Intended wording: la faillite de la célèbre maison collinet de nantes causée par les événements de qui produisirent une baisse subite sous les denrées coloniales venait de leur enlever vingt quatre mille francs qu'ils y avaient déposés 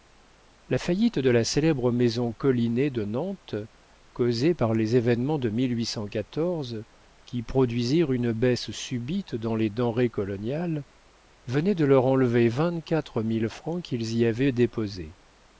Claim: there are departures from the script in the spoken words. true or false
true